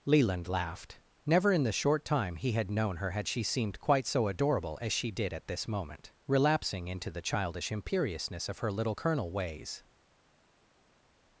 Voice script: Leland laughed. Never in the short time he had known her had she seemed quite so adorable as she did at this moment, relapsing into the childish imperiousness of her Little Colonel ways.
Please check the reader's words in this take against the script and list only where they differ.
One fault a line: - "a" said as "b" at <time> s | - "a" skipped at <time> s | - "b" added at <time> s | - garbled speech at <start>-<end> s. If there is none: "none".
none